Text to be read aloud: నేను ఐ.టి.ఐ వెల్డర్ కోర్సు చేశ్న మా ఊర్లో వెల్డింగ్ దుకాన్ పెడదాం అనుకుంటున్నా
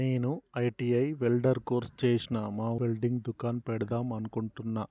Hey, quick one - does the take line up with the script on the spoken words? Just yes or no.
no